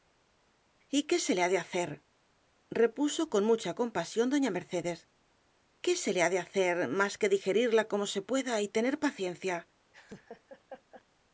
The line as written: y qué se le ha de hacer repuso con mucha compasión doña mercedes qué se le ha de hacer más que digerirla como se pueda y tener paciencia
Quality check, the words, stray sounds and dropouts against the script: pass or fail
fail